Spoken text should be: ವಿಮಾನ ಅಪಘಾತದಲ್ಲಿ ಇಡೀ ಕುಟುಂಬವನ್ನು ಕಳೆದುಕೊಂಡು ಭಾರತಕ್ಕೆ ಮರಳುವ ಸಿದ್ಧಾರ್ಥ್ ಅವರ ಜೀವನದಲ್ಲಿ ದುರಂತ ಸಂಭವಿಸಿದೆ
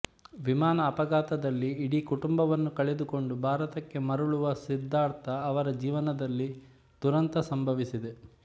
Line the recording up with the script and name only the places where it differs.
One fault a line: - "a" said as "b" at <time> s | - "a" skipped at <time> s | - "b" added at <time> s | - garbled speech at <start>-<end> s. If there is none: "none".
none